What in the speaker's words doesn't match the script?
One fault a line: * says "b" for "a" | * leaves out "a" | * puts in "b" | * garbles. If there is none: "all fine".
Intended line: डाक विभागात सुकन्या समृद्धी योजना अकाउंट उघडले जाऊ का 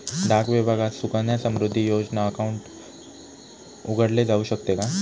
* puts in "शकते"